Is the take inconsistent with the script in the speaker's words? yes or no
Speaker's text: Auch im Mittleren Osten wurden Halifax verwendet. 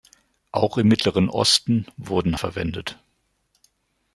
yes